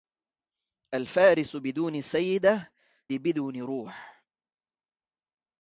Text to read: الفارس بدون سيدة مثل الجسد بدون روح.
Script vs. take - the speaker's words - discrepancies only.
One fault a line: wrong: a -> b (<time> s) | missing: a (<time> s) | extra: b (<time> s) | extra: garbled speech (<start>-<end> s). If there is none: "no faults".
missing: مثل الجسد (2.7 s)